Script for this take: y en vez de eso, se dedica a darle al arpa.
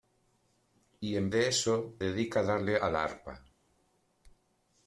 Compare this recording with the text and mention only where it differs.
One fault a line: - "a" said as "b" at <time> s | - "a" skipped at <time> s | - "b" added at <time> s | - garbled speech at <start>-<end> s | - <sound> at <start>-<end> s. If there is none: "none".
- "vez" skipped at 1.3 s
- "se" skipped at 1.9 s